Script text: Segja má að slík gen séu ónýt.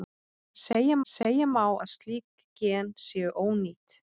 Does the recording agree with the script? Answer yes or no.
no